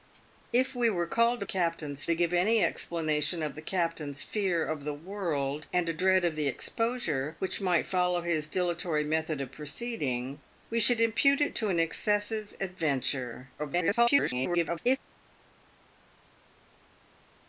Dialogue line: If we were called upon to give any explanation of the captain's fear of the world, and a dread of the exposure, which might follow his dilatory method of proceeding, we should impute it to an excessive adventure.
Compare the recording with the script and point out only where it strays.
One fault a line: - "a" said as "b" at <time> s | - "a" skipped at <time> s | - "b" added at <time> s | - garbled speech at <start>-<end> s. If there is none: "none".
- "upon" said as "captain's" at 1.4 s
- garbled speech at 13.6-15.0 s